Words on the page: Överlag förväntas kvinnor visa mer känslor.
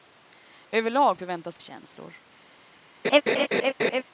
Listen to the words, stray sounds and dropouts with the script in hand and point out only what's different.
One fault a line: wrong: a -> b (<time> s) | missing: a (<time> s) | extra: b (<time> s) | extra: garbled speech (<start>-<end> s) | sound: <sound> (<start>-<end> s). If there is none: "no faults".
missing: kvinnor visa mer (1.6 s)
sound: laugh (3.0-4.0 s)